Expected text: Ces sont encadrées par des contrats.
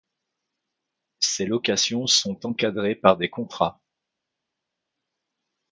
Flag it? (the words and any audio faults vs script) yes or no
yes